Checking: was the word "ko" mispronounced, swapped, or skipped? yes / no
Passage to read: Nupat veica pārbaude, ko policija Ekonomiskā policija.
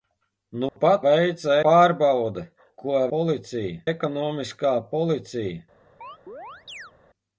no